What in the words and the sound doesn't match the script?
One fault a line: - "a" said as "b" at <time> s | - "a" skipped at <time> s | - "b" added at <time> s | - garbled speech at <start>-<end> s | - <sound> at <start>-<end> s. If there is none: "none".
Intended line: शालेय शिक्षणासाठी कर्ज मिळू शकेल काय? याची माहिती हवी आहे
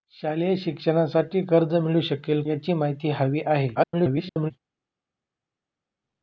- "काय" skipped at 2.4 s
- garbled speech at 3.7-4.5 s